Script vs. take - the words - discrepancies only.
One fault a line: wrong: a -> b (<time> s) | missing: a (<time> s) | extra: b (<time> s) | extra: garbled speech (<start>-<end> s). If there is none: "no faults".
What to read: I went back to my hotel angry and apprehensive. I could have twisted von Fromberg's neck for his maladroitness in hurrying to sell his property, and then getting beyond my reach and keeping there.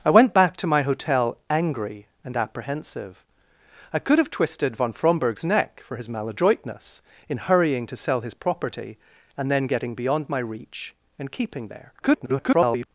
extra: garbled speech (12.0-12.9 s)